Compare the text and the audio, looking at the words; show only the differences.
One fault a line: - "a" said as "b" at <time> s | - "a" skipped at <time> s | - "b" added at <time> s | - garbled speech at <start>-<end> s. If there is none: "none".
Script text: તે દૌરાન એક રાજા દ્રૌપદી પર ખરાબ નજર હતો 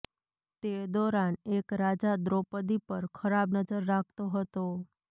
- "રાખતો" added at 3.9 s